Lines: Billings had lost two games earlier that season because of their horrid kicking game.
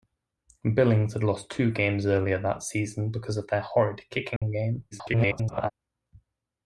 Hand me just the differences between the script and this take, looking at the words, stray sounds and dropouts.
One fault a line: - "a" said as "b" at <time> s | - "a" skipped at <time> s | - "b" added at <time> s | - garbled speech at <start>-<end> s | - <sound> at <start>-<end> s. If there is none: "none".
- dropout at 4.4-4.4 s
- garbled speech at 4.9-5.7 s